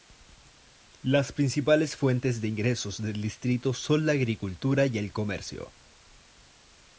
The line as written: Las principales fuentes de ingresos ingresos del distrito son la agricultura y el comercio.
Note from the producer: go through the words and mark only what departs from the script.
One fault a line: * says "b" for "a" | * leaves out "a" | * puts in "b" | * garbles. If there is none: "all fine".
* leaves out "ingresos"